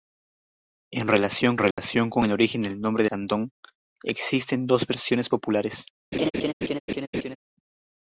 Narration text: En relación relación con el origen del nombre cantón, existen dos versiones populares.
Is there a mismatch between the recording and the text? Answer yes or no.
no